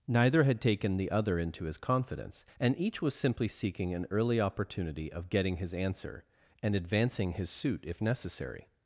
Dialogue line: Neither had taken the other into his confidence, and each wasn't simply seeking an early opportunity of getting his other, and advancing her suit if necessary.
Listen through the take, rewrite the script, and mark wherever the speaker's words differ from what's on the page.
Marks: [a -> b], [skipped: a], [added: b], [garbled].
Neither had taken the other into his confidence, and each [wasn't -> was] simply seeking an early opportunity of getting his [other, -> answer] and advancing [her -> his] suit if necessary.